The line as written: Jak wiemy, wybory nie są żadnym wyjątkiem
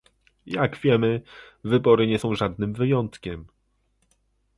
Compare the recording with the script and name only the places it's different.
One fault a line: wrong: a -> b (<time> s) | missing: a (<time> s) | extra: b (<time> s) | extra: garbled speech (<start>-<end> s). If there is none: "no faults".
no faults